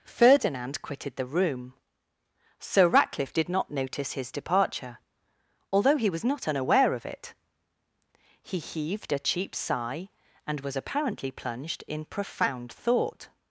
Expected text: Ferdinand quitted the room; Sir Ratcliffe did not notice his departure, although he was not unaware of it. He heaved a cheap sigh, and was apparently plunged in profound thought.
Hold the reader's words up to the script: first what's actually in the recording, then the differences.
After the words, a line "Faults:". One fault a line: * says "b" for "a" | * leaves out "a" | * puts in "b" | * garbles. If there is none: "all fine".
Ferdinand quitted the room; Sir Ratcliffe did not notice his departure, although he was not unaware of it. He heaved a cheap sigh, and was apparently plunged in profound thought.
Faults:
all fine